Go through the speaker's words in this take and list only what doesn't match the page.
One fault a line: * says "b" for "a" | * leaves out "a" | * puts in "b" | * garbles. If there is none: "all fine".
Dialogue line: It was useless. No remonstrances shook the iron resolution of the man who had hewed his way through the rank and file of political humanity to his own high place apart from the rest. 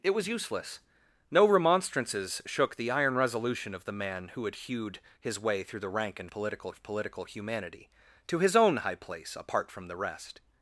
* says "political" for "file"